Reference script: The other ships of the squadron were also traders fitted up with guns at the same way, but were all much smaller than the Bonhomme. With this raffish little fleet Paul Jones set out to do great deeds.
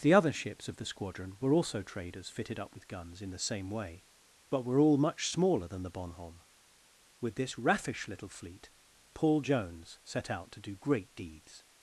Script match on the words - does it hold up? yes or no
no